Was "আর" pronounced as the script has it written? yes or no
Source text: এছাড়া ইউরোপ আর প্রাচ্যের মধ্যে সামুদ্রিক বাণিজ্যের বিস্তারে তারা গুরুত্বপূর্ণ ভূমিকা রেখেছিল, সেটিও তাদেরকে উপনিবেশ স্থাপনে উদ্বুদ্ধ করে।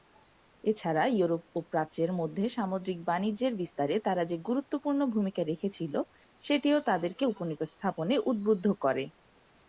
no